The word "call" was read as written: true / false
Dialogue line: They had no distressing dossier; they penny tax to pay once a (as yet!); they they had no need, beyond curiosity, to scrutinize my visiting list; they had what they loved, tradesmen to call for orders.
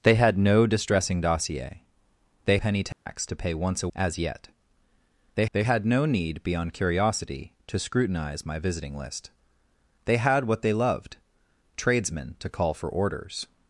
true